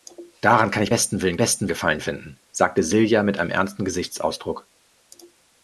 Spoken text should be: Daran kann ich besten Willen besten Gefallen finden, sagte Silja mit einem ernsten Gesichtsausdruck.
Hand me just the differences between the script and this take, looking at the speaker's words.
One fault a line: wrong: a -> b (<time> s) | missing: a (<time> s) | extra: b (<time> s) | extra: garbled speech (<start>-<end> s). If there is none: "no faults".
no faults